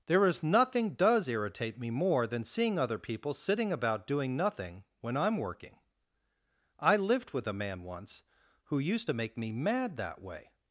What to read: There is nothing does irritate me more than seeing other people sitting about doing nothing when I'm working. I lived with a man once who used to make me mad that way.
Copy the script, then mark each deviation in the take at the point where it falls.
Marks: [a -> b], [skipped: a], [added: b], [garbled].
There is nothing does irritate me more than seeing other people sitting about doing nothing when I'm working. I lived with a man once who used to make me mad that way.